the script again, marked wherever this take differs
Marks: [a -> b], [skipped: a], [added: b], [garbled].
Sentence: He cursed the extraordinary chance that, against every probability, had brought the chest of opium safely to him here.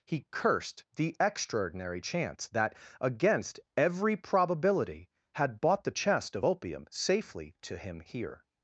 He cursed the extraordinary chance that, against every probability, had [brought -> bought] the chest of opium safely to him here.